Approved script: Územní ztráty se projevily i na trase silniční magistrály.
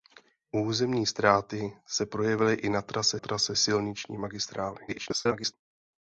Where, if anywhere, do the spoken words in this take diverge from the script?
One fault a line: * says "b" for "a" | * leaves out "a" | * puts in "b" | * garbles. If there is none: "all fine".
* puts in "trase"
* garbles